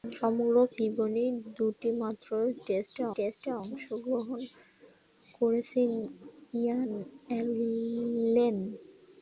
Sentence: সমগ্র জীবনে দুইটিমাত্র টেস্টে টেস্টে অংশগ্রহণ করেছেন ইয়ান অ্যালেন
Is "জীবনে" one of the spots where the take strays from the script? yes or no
no